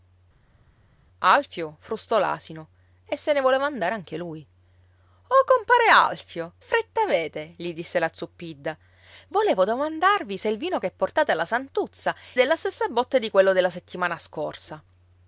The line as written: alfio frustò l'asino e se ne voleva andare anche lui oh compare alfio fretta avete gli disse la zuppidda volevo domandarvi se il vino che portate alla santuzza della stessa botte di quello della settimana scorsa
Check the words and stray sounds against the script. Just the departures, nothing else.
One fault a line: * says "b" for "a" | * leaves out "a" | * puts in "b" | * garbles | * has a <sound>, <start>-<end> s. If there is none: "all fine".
all fine